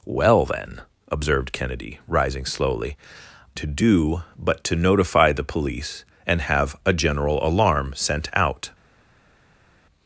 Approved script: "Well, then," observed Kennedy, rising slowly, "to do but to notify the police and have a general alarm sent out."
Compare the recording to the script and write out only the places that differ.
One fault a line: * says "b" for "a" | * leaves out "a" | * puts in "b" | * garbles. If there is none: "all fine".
all fine